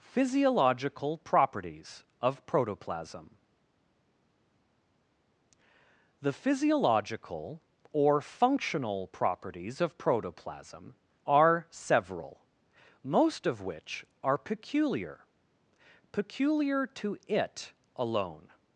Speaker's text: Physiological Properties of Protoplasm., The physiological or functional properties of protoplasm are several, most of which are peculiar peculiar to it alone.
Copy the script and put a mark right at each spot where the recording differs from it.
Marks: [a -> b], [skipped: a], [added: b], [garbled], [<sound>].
Physiological Properties of Protoplasm., The physiological or functional properties of protoplasm are several, most of which are peculiar peculiar to it alone.